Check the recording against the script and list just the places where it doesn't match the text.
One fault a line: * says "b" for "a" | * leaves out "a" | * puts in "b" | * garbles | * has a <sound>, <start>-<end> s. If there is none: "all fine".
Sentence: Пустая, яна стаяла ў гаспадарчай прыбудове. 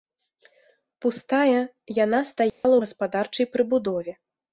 * has a dropout, 2.5-2.6 s